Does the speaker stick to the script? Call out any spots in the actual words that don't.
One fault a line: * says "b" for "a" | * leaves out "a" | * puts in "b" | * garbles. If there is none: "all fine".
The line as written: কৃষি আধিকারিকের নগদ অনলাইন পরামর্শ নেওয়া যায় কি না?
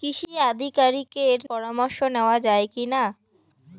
* leaves out "নগদ অনলাইন"